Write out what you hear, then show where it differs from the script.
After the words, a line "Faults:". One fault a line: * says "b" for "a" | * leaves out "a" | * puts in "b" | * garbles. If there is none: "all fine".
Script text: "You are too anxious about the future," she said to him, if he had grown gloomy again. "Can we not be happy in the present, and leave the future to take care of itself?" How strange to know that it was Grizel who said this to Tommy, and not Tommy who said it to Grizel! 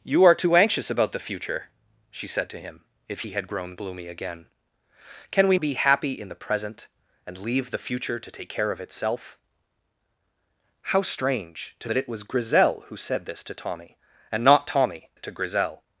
"You are too anxious about the future," she said to him, if he had grown gloomy again. "Can we be happy in the present, and leave the future to take care of itself?" How strange to that it was Grizel who said this to Tommy, and not Tommy it to Grizel!
Faults:
* leaves out "not"
* leaves out "know"
* leaves out "who said"